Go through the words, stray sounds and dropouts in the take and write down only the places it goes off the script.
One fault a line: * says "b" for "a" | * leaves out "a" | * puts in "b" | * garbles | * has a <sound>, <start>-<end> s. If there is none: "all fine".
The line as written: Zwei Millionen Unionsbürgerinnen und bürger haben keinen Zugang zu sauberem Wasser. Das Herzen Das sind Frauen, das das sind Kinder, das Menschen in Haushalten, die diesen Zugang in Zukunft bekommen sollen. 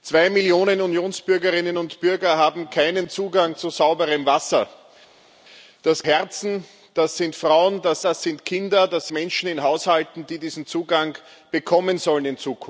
all fine